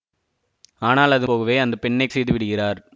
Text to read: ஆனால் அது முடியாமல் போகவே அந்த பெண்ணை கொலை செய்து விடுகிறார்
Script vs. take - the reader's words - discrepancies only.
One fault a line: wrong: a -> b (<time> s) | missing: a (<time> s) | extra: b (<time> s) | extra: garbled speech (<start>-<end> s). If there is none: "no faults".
missing: முடியாமல் (1.3 s)
missing: கொலை (2.1 s)